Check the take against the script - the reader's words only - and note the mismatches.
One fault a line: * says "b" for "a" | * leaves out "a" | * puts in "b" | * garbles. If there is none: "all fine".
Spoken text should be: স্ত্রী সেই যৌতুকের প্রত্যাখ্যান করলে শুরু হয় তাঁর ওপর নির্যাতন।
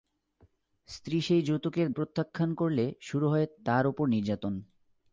all fine